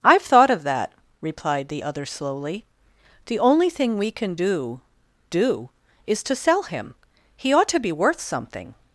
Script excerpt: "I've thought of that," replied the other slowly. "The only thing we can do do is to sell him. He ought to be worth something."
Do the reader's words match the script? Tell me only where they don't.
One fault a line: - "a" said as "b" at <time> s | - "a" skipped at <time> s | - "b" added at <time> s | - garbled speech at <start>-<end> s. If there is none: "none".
none